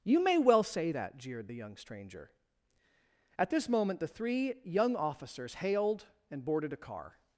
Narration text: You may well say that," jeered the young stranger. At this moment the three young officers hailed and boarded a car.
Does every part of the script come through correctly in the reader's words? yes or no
yes